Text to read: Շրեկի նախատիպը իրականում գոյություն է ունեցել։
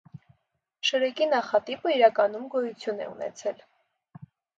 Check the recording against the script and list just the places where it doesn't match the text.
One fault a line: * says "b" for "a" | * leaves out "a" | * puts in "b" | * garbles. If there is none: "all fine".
all fine